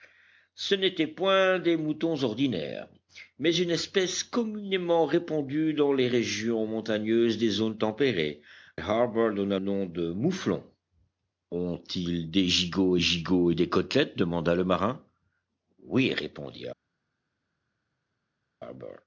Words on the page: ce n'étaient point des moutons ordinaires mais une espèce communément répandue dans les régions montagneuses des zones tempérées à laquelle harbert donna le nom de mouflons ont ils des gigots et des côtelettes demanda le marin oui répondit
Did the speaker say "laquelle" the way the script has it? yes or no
no